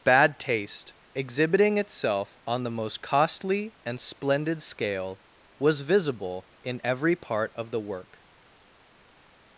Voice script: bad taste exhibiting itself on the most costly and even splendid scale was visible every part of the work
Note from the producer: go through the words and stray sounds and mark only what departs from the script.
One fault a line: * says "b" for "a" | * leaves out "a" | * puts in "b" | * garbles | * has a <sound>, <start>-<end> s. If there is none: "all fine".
* leaves out "even"
* puts in "in"